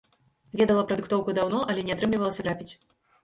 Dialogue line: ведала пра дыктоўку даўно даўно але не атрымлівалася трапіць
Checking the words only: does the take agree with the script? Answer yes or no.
no